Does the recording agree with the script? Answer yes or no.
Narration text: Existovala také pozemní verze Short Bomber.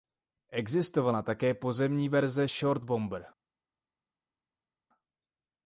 yes